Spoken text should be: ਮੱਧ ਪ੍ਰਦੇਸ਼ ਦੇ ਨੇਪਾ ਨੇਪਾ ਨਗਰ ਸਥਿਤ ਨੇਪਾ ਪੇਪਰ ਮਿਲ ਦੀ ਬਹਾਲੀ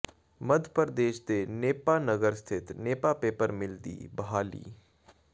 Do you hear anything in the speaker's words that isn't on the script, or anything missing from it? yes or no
yes